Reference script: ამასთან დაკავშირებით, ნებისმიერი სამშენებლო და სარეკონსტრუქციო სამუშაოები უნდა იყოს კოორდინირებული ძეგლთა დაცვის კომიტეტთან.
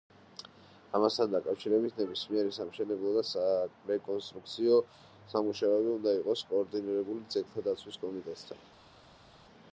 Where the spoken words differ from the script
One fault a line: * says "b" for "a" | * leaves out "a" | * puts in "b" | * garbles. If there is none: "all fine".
all fine